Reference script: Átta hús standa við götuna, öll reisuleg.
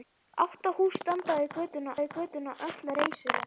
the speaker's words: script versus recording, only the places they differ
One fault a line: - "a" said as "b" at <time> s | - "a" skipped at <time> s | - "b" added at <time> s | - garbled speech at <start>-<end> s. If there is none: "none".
- "við götuna" added at 2.0 s